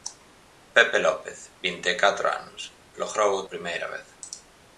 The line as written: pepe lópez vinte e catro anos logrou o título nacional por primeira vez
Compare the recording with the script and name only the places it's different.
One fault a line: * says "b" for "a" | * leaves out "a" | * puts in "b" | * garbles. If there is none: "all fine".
* leaves out "título nacional por"